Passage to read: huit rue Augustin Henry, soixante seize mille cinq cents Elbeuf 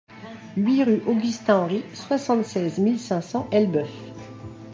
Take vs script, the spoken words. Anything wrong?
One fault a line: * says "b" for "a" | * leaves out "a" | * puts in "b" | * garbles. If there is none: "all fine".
all fine